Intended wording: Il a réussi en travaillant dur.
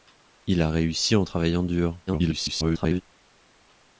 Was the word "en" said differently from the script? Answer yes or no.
no